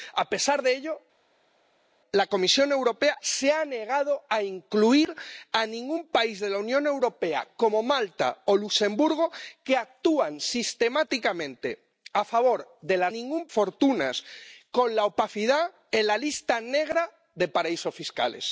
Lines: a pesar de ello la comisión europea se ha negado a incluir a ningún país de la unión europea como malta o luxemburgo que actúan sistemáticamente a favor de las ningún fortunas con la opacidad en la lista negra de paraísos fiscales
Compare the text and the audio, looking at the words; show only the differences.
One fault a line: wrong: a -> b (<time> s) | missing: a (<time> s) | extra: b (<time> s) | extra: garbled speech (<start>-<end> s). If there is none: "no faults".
no faults